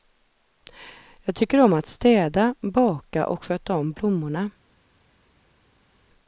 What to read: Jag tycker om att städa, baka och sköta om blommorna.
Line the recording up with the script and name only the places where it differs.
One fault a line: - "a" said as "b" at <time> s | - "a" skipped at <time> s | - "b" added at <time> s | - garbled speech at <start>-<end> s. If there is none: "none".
none